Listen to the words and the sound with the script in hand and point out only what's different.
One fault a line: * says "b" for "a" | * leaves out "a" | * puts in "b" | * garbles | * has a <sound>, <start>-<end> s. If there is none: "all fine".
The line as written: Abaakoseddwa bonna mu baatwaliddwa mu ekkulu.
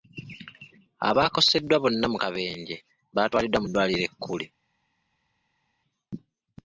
* puts in "kabenje"
* puts in "ddwaliro"